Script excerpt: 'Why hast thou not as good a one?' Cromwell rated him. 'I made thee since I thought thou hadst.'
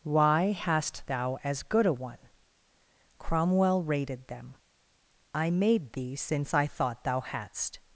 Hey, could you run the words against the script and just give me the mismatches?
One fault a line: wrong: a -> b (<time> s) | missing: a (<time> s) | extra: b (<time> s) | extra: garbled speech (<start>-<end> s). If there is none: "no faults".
missing: not (1.4 s)
wrong: him -> them (4.3 s)